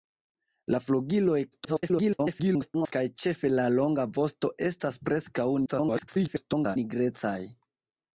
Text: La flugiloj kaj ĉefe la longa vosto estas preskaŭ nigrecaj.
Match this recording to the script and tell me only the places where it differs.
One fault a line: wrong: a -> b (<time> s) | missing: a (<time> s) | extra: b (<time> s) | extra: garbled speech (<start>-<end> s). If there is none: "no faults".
extra: garbled speech (1.5-2.9 s)
extra: garbled speech (5.7-6.8 s)